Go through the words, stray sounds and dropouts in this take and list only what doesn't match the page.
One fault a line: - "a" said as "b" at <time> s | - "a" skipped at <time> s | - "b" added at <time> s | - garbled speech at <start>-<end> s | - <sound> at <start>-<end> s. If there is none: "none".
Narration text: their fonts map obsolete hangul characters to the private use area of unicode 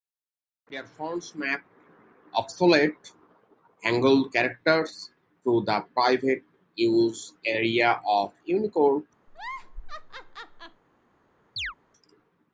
- laugh at 9.3-10.8 s
- chirp at 11.6-11.7 s